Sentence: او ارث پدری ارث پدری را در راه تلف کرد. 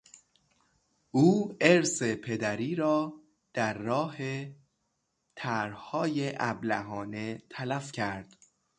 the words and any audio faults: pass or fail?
fail